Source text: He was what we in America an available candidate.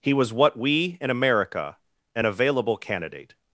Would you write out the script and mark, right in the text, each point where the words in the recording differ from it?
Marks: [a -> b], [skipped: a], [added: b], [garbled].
He was what we in America an available candidate.